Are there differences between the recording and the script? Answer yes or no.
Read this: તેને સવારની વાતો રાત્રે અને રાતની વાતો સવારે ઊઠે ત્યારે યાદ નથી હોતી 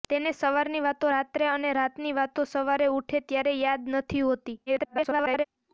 yes